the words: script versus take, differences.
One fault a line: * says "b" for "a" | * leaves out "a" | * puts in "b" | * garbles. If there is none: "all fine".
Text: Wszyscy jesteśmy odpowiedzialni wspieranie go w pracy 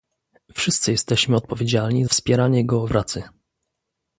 all fine